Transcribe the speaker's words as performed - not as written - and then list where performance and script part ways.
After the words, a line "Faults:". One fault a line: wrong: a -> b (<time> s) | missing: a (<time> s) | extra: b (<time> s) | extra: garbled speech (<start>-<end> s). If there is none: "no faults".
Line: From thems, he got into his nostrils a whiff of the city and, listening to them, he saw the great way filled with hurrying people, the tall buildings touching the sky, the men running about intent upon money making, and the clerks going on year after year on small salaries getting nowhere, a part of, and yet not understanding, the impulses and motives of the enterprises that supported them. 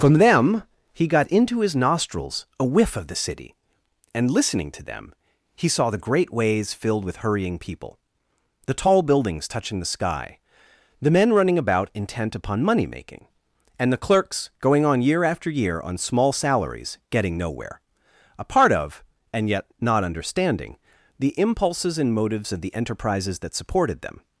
From them, he got into his nostrils a whiff of the city and, listening to them, he saw the great ways filled with hurrying people, the tall buildings touching the sky, the men running about intent upon money making, and the clerks going on year after year on small salaries getting nowhere, a part of, and yet not understanding, the impulses and motives of the enterprises that supported them.
Faults:
wrong: thems -> them (0.1 s)
wrong: way -> ways (6.3 s)